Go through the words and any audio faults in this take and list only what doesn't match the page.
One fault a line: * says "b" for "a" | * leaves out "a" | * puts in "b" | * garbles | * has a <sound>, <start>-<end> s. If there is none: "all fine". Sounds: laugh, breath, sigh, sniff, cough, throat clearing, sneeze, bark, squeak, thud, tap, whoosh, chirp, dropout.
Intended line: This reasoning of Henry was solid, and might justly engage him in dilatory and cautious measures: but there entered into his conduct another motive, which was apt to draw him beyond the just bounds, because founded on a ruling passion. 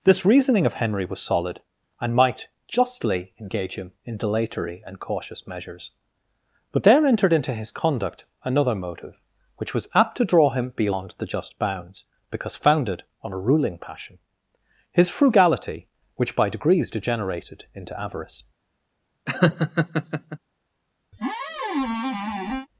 * puts in "His frugality which by degrees degenerated into avarice"
* has a laugh, 19.3-20.4 s
* has a squeak, 21.1-22.7 s